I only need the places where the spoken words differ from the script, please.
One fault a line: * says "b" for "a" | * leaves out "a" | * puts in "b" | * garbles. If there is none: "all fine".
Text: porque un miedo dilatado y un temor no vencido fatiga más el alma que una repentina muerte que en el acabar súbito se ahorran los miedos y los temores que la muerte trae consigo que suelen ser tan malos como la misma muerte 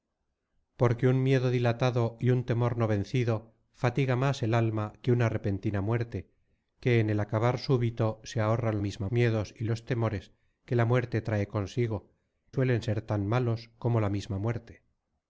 * says "misma" for "los"
* leaves out "que"